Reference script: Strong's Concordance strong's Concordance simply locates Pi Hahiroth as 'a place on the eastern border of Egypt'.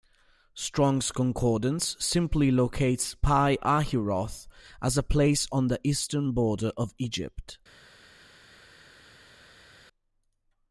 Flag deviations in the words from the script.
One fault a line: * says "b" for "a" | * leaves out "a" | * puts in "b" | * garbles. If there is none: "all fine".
* leaves out "strong's Concordance"